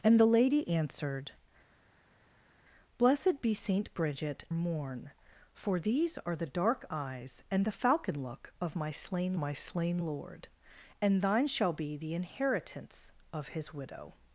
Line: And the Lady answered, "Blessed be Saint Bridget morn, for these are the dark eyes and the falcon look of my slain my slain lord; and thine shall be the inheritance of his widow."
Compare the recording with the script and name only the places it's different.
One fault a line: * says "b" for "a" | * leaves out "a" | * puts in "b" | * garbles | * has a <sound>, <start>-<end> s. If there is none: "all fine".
all fine